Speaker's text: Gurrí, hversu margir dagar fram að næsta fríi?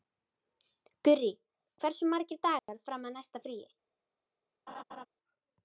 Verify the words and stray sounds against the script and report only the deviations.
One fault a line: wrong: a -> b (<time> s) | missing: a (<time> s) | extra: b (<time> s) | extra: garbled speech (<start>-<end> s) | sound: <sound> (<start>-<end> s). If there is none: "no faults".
sound: dropout (2.6-2.7 s)
sound: laugh (4.7-5.1 s)